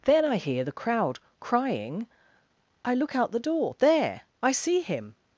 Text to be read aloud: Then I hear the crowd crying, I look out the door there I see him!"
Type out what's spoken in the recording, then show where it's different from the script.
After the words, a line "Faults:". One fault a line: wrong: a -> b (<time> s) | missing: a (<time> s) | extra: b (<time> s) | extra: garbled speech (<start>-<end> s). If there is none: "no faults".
Then I hear the crowd crying, I look out the door there I see him!"
Faults:
no faults